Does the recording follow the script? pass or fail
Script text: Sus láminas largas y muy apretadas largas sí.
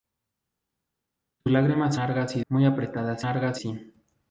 pass